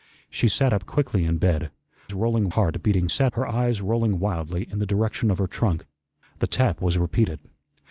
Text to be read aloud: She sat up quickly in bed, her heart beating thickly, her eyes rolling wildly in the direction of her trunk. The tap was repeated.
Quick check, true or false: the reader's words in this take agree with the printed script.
false